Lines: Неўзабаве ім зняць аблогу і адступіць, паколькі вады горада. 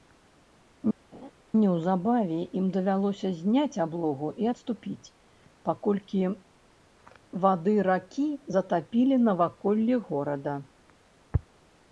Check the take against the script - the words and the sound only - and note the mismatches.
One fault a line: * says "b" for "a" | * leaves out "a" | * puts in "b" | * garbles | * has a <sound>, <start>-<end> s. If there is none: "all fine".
* has a laugh, 1.1-1.3 s
* puts in "давялося"
* puts in "ракі затапілі наваколлі"